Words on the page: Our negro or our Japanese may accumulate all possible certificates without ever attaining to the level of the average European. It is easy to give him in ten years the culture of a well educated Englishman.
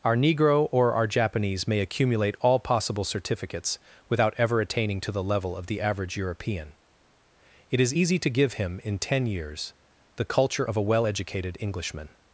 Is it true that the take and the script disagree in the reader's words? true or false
false